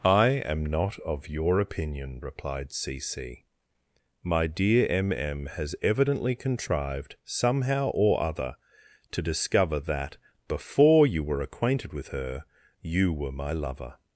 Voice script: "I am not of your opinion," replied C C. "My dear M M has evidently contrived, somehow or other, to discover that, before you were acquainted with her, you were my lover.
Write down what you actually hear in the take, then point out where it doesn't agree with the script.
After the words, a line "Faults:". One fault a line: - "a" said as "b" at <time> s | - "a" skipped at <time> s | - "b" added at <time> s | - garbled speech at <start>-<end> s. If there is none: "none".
"I am not of your opinion," replied C C. "My dear M M has evidently contrived, somehow or other, to discover that, before you were acquainted with her, you were my lover.
Faults:
none